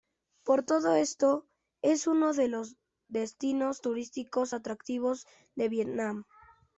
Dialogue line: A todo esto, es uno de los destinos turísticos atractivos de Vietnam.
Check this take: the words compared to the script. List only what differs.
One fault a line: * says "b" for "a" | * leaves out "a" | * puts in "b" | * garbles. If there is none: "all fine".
* says "Por" for "A"